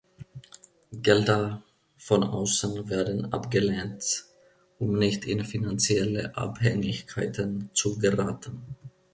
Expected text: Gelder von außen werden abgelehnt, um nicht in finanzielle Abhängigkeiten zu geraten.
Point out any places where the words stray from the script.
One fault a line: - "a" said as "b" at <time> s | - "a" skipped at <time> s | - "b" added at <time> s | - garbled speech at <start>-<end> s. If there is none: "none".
none